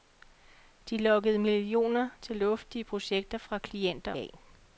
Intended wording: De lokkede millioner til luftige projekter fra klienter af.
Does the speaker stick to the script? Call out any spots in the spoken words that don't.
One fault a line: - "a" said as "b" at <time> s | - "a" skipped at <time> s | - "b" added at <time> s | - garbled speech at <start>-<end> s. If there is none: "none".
none